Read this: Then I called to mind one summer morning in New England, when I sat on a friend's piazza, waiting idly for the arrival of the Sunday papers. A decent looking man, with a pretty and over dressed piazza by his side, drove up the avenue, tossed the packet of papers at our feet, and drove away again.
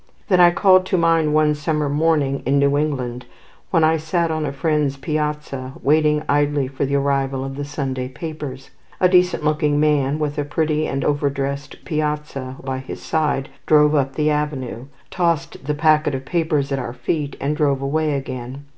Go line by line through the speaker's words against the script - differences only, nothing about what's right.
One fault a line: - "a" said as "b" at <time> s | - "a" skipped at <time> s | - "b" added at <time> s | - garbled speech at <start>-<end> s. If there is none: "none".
none